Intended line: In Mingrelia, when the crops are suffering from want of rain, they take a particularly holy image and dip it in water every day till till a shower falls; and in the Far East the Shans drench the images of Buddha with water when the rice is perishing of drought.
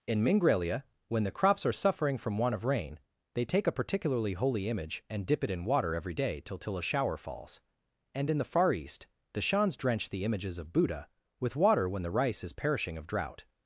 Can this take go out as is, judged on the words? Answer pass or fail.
pass